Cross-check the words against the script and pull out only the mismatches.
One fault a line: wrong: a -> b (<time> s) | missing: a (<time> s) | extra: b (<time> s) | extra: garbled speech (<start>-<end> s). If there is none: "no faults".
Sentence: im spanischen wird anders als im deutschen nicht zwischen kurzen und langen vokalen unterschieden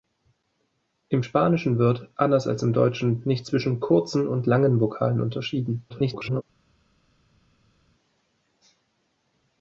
extra: garbled speech (5.9-6.4 s)